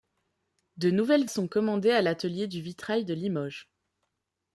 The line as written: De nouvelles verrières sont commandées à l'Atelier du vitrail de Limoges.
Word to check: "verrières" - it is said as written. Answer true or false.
false